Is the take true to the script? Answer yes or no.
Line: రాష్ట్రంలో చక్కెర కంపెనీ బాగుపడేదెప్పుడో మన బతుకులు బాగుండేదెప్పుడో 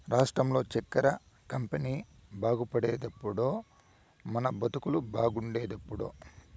yes